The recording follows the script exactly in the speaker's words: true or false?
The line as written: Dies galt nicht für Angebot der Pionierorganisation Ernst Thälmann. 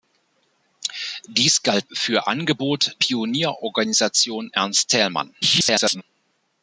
false